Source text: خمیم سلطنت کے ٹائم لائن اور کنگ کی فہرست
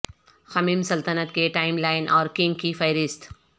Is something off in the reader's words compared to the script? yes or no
no